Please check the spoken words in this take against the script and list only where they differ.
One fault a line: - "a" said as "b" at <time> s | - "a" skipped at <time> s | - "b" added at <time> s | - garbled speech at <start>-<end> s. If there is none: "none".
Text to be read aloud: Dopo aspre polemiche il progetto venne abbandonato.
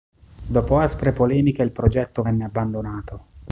none